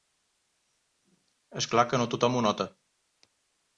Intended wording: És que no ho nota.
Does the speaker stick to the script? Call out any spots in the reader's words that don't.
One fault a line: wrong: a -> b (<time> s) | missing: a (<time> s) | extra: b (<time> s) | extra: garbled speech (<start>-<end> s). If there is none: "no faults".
extra: clar (1.7 s)
extra: tothom (2.1 s)